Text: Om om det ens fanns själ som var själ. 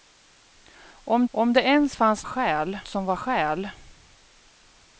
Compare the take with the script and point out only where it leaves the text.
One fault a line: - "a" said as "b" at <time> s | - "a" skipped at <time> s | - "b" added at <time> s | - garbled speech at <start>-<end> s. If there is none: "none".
none